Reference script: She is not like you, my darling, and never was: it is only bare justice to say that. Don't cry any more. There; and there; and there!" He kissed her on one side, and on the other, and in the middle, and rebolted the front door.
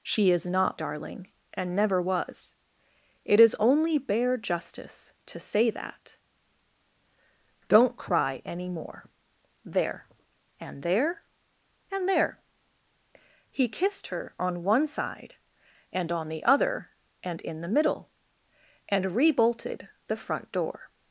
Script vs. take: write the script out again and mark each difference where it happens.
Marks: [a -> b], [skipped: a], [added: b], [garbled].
She is not [skipped: like you, my] darling, and never was: it is only bare justice to say that. Don't cry any more. There; and there; and there!" He kissed her on one side, and on the other, and in the middle, and rebolted the front door.